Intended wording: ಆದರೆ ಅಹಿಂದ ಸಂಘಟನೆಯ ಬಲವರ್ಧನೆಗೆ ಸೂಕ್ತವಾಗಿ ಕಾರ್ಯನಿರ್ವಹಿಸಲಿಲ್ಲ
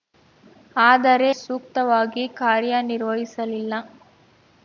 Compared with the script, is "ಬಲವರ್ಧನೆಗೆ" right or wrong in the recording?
wrong